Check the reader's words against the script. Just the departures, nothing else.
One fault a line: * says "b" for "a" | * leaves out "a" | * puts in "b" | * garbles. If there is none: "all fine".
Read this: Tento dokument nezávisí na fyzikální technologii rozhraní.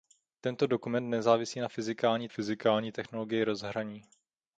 * puts in "fyzikální"